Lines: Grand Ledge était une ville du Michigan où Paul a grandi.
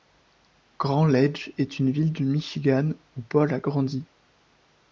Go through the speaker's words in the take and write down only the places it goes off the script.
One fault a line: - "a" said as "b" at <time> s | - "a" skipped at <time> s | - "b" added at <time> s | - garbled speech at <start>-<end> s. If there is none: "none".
- "était" said as "est" at 1.6 s